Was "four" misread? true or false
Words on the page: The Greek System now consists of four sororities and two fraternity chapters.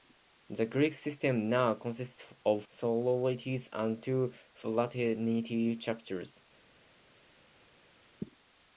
true